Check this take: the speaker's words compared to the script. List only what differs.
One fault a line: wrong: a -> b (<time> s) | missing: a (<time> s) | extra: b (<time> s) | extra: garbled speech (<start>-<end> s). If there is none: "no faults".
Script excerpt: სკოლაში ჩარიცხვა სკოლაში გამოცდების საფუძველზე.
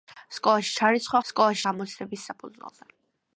no faults